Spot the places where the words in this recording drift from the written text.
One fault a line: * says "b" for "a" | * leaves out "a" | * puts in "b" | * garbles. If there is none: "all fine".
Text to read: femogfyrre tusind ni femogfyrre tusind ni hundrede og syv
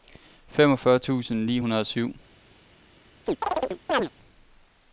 * leaves out "femogfyrre tusind ni"